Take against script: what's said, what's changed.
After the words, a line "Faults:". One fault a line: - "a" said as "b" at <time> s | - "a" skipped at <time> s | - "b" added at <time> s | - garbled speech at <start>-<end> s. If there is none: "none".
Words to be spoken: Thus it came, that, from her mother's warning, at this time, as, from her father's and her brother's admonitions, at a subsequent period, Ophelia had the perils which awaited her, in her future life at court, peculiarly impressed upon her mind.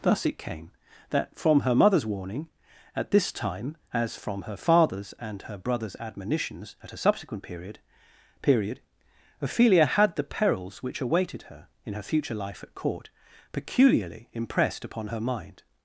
Thus it came, that, from her mother's warning, at this time, as, from her father's and her brother's admonitions, at a subsequent period period, Ophelia had the perils which awaited her, in her future life at court, peculiarly impressed upon her mind.
Faults:
- "period" added at 8.4 s